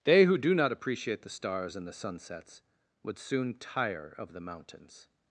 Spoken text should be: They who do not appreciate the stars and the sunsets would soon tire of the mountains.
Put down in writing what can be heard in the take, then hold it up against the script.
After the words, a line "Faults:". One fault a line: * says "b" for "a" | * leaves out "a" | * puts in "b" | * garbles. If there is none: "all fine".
They who do not appreciate the stars and the sunsets would soon tire of the mountains.
Faults:
all fine